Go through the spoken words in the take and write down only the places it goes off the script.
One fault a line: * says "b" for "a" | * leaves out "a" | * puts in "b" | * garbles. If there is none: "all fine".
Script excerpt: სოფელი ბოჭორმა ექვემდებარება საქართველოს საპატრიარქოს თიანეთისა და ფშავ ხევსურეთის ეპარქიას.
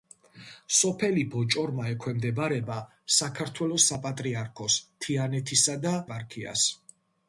* leaves out "ფშავ ხევსურეთის"